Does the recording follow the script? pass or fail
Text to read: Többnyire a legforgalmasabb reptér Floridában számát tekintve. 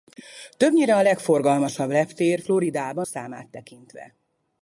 pass